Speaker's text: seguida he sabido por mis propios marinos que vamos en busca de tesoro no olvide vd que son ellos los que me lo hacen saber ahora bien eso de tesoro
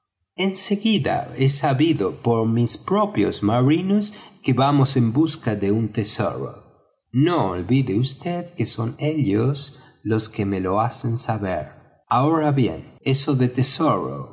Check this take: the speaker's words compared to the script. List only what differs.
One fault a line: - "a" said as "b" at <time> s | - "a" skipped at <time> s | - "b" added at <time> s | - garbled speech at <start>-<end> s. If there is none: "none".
- "un" added at 5.7 s